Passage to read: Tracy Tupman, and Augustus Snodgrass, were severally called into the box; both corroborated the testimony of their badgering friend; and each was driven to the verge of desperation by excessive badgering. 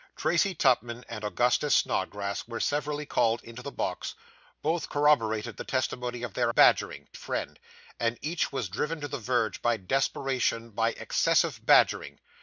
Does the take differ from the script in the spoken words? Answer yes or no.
no